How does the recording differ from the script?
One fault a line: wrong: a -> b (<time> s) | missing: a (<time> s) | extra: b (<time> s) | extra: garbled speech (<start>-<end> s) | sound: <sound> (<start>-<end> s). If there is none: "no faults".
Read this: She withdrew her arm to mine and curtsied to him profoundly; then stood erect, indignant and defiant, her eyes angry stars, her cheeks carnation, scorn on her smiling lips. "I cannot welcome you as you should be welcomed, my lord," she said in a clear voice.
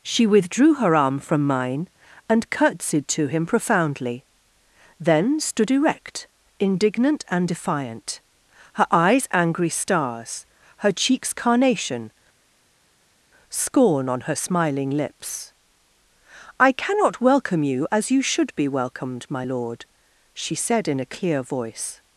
wrong: to -> from (1.2 s)